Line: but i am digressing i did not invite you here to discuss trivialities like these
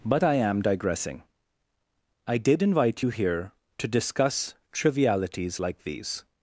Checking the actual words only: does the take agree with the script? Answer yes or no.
no